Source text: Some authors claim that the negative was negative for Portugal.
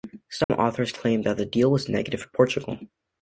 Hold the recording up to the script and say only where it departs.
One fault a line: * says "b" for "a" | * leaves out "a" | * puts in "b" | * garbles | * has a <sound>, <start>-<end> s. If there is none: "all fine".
* has a dropout, 0.4-0.5 s
* says "deal" for "negative"